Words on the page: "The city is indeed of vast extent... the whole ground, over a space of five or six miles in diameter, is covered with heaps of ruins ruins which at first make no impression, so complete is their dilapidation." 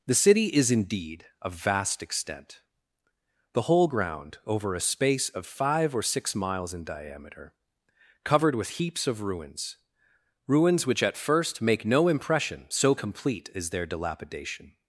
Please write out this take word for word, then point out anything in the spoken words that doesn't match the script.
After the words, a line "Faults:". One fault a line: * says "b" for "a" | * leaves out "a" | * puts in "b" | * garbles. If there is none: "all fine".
"The city is indeed of vast extent... the whole ground, over a space of five or six miles in diameter, covered with heaps of ruins ruins which at first make no impression, so complete is their dilapidation."
Faults:
* leaves out "is"